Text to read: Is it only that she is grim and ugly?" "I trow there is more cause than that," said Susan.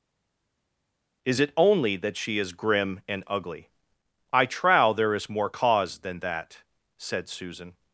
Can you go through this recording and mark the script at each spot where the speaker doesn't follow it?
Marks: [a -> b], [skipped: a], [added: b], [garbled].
Is it only that she is grim and ugly?" "I trow there is more cause than that," said Susan.